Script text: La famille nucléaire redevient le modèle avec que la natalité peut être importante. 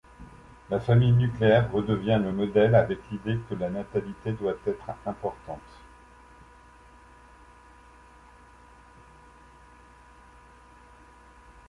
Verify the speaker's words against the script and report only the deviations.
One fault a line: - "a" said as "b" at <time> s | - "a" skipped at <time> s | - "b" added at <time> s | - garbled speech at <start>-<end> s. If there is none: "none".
- "l'idée" added at 3.1 s
- "peut" said as "doit" at 4.4 s